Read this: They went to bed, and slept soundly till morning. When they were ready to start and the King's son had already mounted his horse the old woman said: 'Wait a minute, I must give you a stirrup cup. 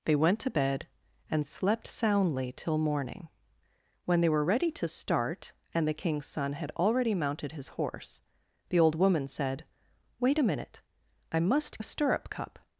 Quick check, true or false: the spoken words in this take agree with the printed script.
false